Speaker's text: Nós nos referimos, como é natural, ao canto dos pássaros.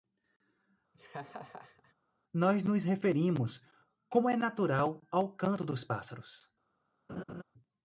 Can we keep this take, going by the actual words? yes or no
yes